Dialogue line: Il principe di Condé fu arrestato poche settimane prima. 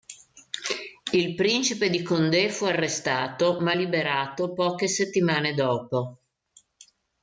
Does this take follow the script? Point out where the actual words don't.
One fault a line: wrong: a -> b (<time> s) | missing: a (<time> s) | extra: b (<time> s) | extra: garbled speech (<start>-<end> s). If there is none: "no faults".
extra: ma liberato (3.6 s)
wrong: prima -> dopo (5.5 s)